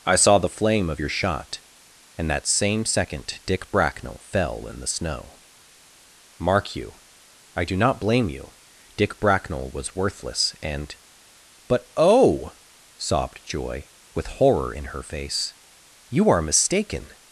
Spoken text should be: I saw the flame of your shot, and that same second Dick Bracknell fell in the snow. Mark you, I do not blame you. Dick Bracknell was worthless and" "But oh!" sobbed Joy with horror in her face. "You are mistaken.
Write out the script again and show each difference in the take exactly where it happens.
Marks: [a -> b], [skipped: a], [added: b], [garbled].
I saw the flame of your shot, and that same second Dick Bracknell fell in the snow. Mark you, I do not blame you. Dick Bracknell was worthless and" "But oh!" sobbed Joy with horror in her face. "You are mistaken.